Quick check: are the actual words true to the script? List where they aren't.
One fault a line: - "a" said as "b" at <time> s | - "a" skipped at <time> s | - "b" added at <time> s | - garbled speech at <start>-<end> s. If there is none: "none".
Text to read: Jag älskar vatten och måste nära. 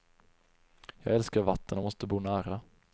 - "bo" added at 2.0 s